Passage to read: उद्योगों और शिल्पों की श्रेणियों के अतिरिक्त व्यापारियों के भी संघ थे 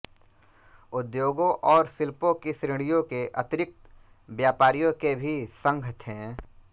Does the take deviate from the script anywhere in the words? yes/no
no